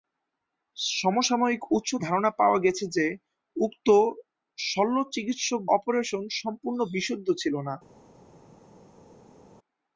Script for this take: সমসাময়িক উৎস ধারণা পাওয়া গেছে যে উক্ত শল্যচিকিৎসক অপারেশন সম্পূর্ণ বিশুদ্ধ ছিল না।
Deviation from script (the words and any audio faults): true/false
false